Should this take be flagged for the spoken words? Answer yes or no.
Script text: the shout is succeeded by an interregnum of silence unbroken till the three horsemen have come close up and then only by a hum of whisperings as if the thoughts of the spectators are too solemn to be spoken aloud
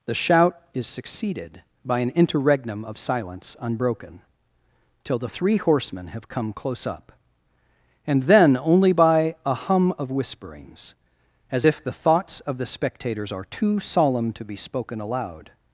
no